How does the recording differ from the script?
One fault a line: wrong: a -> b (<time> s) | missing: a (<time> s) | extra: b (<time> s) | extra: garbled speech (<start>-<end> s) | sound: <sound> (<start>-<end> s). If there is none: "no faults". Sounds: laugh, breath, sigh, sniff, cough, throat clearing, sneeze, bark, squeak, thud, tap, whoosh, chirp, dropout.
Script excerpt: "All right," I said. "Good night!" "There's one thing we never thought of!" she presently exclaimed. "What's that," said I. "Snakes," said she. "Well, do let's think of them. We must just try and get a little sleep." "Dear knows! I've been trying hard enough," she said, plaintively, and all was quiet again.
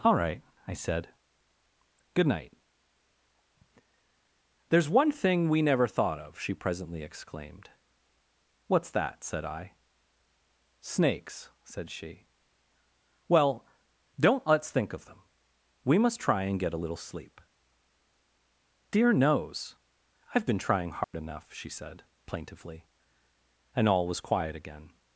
wrong: do -> don't (14.2 s)
missing: just (16.2 s)
sound: dropout (21.0-21.1 s)